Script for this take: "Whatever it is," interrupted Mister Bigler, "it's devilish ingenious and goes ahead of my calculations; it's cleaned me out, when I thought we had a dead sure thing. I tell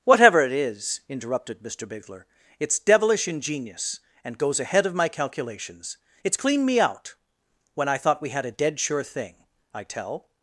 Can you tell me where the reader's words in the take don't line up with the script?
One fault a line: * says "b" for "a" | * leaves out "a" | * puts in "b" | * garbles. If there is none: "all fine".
all fine